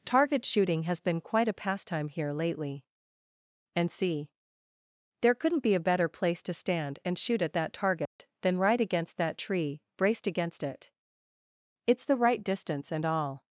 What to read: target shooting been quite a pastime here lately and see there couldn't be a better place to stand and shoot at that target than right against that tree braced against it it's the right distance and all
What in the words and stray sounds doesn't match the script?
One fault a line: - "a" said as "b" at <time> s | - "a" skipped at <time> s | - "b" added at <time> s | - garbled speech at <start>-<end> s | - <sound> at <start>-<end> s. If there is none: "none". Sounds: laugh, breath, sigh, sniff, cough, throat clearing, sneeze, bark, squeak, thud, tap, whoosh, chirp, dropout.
- "has" added at 0.8 s
- dropout at 8.1-8.2 s